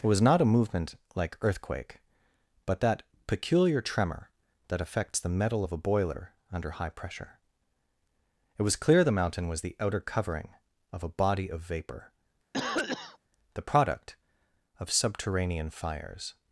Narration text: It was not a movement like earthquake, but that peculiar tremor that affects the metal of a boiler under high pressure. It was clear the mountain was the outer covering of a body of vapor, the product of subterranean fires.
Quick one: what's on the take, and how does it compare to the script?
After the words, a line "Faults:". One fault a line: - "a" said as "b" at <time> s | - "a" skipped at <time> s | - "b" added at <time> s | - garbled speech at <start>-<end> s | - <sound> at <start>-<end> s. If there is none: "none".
It was not a movement like earthquake, but that peculiar tremor that affects the metal of a boiler under high pressure. It was clear the mountain was the outer covering of a body of vapor, the product of subterranean fires.
Faults:
- cough at 12.5-13.2 s